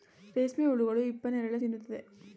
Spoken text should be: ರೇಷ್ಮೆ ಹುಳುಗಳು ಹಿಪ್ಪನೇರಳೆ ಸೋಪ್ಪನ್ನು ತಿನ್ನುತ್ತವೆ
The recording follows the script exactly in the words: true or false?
false